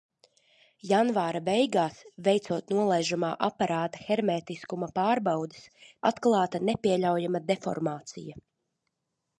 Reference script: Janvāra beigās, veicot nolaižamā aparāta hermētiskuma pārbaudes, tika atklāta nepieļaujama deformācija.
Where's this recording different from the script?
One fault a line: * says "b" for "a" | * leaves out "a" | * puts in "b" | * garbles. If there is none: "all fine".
* leaves out "tika"